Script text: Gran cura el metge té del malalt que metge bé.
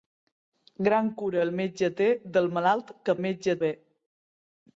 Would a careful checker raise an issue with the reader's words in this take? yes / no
no